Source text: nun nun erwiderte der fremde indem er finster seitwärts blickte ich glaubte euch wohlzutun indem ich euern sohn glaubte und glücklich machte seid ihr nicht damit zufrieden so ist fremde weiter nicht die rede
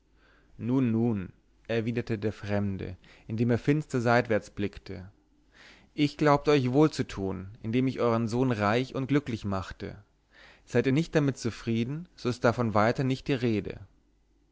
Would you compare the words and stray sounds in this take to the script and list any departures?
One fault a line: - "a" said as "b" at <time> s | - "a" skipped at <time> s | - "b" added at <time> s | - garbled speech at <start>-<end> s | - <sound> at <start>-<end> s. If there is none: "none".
- "glaubte" said as "reich" at 8.5 s
- "fremde" said as "davon" at 12.4 s